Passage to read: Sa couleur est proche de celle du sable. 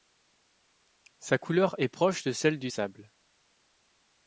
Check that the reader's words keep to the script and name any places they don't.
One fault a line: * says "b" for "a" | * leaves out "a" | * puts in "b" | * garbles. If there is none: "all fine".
all fine